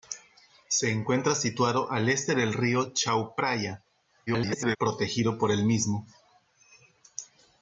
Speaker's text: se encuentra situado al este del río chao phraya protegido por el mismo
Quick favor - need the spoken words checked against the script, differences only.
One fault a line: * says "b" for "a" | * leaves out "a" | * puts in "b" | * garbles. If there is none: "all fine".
* garbles